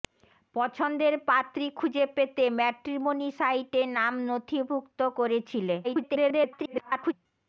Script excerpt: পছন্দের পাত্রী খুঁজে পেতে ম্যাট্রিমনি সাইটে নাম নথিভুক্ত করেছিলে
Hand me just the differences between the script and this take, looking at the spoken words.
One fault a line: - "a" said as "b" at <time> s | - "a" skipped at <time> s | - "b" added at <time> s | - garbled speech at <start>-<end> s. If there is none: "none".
- garbled speech at 5.8-7.1 s